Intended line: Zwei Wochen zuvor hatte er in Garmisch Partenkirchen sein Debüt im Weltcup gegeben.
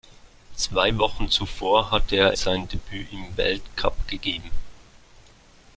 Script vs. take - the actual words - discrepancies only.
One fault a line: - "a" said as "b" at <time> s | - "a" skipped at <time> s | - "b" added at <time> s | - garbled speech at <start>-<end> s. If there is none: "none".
- "in Garmisch Partenkirchen" skipped at 2.3 s